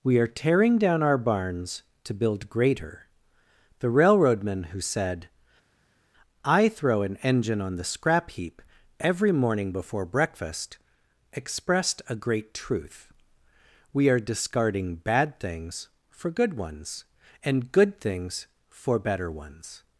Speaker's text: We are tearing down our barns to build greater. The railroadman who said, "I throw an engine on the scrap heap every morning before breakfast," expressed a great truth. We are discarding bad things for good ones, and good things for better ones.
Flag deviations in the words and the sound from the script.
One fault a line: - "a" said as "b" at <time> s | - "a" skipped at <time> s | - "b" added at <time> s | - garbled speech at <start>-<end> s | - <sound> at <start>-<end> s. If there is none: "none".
none